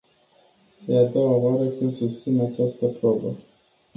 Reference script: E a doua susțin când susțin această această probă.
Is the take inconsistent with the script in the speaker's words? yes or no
yes